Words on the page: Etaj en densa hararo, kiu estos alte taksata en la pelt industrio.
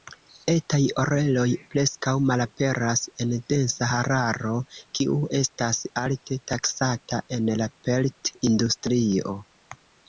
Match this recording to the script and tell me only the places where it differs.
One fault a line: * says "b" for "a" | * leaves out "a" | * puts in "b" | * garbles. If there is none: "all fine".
* puts in "oreloj preskaŭ malaperas"
* says "estas" for "estos"